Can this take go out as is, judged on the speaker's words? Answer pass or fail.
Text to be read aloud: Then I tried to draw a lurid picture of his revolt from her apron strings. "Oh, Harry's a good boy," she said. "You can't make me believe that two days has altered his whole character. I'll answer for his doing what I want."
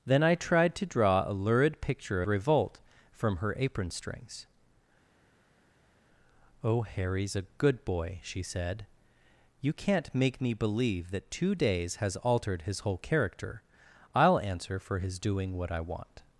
fail